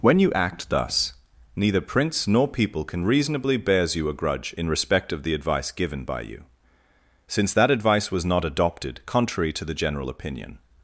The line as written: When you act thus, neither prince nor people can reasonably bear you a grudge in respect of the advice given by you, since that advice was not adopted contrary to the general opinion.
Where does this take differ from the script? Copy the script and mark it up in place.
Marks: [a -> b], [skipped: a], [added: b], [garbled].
When you act thus, neither prince nor people can reasonably [bear -> bears] you a grudge in respect of the advice given by you, since that advice was not adopted contrary to the general opinion.